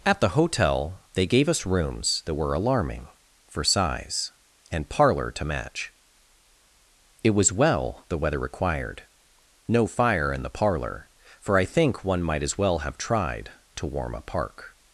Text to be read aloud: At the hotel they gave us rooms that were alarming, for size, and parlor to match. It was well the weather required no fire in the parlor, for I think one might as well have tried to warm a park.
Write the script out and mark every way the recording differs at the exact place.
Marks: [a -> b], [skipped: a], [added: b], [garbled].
At the hotel they gave us rooms that were alarming, for size, and parlor to match. It was well the weather required no fire in the parlor, for I think one might as well have tried to warm a park.